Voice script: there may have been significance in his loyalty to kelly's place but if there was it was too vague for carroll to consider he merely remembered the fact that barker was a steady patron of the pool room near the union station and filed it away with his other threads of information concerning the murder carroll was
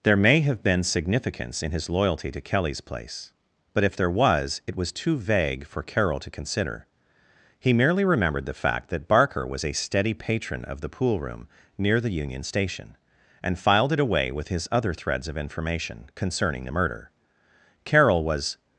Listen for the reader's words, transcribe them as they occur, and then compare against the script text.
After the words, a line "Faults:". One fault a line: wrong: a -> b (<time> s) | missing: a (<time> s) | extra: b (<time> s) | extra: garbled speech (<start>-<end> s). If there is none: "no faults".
there may have been significance in his loyalty to kelly's place but if there was it was too vague for carroll to consider he merely remembered the fact that barker was a steady patron of the pool room near the union station and filed it away with his other threads of information concerning the murder carroll was
Faults:
no faults